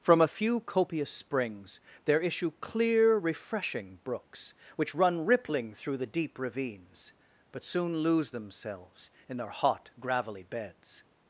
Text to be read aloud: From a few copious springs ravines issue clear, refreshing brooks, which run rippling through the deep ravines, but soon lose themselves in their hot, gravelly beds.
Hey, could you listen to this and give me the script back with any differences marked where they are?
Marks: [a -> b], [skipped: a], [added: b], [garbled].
From a few copious springs [ravines -> there] issue clear, refreshing brooks, which run rippling through the deep ravines, but soon lose themselves in their hot, gravelly beds.